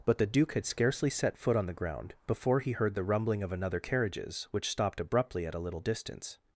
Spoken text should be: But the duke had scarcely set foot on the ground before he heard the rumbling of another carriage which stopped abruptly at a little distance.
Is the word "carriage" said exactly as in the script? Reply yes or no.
no